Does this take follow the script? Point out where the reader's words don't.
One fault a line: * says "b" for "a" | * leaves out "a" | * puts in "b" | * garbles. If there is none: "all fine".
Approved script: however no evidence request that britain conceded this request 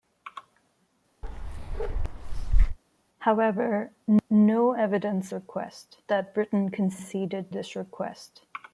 all fine